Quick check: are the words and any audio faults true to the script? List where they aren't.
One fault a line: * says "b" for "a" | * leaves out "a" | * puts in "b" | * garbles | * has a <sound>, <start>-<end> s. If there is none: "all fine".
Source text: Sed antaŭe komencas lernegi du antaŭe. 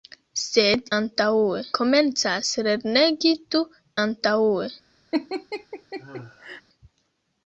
* has a laugh, 5.1-6.6 s